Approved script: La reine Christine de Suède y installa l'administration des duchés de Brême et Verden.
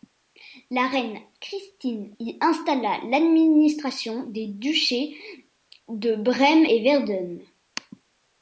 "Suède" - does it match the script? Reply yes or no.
no